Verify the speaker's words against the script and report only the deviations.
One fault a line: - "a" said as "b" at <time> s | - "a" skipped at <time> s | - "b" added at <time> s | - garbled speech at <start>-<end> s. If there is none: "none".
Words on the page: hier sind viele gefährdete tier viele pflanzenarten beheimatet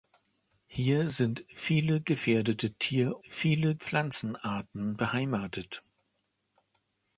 none